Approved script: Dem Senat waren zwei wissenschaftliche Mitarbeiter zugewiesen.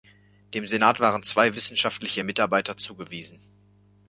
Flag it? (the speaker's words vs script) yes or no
no